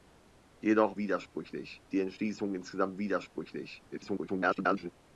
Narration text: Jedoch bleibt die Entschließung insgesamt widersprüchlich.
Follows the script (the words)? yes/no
no